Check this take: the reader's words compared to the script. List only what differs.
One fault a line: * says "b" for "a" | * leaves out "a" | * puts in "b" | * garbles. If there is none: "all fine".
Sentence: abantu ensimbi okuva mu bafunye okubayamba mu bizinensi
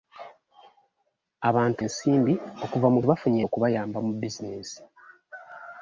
all fine